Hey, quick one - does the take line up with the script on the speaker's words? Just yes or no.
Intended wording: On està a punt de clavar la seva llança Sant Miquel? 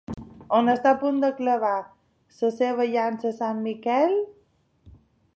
yes